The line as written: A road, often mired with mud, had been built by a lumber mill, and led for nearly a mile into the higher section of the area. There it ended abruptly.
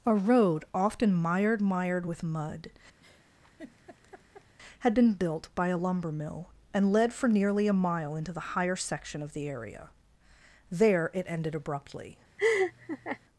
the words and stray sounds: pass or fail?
fail